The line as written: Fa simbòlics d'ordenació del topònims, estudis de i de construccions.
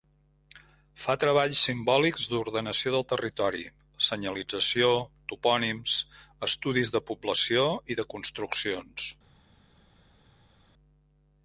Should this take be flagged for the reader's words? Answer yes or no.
yes